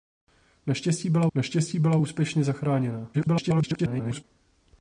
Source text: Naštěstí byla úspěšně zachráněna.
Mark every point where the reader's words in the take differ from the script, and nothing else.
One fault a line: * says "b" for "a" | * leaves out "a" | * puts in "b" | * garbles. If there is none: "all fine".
* puts in "naštěstí byla"
* garbles